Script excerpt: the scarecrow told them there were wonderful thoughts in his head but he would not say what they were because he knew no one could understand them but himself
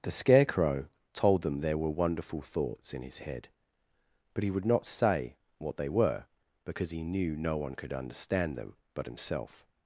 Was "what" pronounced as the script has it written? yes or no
yes